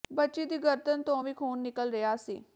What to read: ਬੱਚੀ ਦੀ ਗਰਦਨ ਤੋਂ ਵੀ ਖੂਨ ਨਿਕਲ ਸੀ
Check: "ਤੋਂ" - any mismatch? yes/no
no